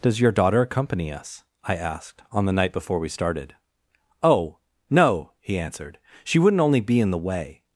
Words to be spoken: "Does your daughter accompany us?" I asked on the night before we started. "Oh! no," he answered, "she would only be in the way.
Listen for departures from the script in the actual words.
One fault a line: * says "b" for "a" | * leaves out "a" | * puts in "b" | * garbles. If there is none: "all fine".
* says "wouldn't" for "would"